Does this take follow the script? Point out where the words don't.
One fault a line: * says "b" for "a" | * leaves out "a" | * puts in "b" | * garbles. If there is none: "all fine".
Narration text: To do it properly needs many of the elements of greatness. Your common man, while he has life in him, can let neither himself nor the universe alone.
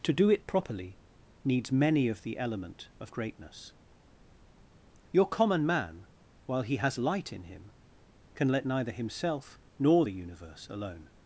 * says "element" for "elements"
* says "light" for "life"